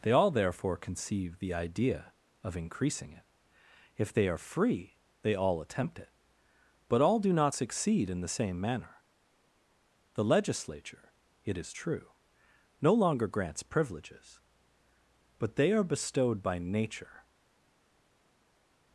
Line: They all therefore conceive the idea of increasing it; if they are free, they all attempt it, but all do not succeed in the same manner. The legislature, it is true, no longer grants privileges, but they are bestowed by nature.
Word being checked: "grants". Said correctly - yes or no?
yes